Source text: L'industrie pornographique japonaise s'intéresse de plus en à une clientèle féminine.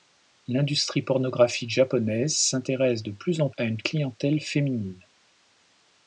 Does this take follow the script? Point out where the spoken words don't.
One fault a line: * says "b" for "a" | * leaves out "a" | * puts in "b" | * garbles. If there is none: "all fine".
all fine